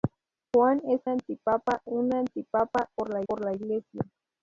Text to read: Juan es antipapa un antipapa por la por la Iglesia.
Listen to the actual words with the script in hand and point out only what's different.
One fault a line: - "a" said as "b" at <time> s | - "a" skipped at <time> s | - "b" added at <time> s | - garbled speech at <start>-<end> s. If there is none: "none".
none